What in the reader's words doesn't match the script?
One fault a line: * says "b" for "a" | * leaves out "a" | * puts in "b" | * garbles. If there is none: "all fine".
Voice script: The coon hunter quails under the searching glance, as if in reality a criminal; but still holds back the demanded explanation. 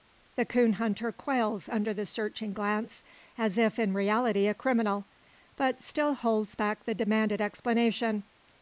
all fine